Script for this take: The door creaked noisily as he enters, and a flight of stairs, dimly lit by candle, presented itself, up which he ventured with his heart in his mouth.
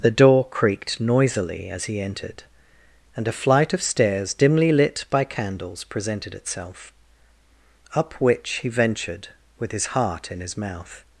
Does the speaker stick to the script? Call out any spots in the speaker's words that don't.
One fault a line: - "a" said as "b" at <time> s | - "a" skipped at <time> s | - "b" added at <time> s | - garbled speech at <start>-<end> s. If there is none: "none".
- "enters" said as "entered" at 2.0 s
- "candle" said as "candles" at 5.2 s